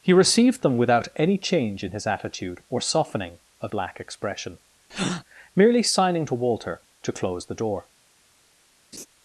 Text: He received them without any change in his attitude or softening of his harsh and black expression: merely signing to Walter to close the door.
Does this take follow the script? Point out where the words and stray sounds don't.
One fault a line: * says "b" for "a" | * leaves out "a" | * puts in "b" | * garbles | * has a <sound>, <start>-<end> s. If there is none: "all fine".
* leaves out "his harsh and"
* has a breath, 4.9-5.2 s
* has a laugh, 8.9-9.1 s